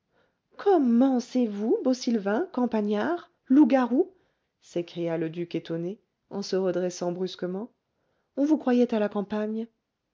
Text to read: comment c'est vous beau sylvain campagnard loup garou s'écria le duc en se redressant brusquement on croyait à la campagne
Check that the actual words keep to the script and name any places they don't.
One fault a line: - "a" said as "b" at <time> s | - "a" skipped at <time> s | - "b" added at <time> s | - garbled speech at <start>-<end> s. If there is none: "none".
- "étonné" added at 5.5 s
- "vous" added at 8.4 s